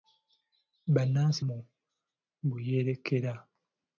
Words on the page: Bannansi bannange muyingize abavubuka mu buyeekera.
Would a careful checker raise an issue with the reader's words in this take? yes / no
yes